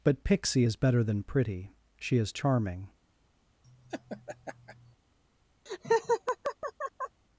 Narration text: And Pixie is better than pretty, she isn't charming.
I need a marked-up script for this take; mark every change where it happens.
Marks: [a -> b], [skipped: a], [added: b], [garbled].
[And -> But] Pixie is better than pretty, she [isn't -> is] charming.